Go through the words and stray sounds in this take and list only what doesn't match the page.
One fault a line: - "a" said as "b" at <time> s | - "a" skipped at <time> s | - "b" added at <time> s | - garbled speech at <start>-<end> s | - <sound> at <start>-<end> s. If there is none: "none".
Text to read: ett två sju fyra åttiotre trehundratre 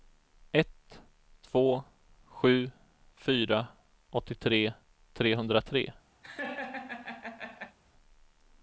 - laugh at 6.2-7.8 s